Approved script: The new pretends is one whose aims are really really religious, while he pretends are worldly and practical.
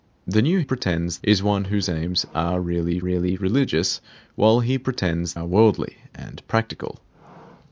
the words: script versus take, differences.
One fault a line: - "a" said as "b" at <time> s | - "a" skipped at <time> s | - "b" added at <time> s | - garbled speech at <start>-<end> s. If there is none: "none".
none